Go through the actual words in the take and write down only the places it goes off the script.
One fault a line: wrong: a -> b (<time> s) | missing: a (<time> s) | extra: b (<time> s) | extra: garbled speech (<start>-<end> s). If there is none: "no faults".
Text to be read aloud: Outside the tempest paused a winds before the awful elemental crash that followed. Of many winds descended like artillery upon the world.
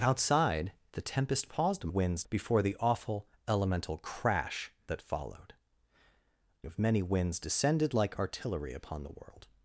no faults